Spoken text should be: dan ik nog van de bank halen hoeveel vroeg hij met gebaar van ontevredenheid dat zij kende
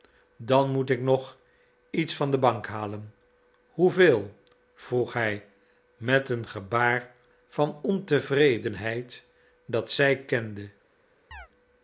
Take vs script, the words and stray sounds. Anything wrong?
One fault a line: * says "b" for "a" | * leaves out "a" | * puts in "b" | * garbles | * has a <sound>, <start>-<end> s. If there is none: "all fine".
* puts in "moet"
* puts in "iets"
* puts in "een"
* has a chirp, 11.3-11.5 s